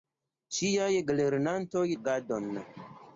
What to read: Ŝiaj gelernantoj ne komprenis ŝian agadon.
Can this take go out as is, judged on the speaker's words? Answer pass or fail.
fail